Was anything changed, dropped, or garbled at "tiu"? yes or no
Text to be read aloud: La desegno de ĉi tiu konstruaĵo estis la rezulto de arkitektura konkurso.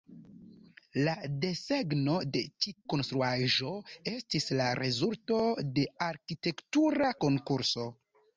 yes